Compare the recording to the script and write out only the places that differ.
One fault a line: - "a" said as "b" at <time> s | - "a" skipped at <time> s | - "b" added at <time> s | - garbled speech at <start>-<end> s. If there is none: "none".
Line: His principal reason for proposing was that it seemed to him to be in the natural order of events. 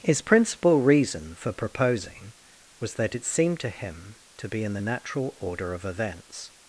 none